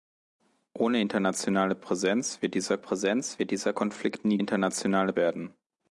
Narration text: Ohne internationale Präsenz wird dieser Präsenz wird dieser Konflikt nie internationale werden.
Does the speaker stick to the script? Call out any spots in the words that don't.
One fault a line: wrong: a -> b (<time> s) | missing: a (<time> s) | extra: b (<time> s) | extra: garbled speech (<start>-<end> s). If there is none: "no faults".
no faults